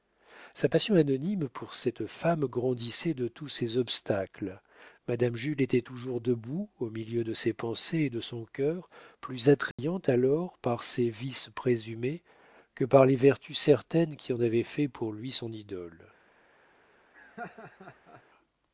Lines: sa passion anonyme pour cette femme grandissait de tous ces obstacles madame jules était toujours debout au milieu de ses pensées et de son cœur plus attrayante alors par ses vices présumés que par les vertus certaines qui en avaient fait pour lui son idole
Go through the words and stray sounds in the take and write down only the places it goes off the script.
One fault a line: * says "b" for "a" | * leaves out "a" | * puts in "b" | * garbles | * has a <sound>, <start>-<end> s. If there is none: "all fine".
* has a dropout, 9.7-9.8 s
* has a laugh, 17.1-18.2 s